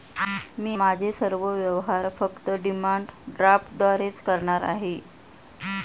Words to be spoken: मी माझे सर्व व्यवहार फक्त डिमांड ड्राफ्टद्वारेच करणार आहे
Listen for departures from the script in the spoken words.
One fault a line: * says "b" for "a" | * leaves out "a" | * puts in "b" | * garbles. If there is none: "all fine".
all fine